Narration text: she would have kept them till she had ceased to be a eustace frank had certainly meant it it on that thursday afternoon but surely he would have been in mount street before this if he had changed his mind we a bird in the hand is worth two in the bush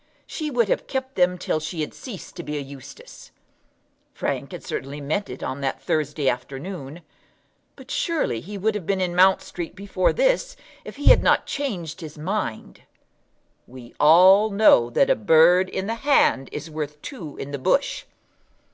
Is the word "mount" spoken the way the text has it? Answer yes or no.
yes